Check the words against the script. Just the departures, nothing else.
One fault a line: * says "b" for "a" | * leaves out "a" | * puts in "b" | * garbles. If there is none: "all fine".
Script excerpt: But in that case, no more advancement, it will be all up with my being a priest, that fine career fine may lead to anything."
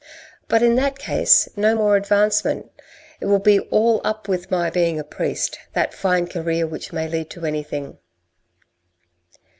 * says "which" for "fine"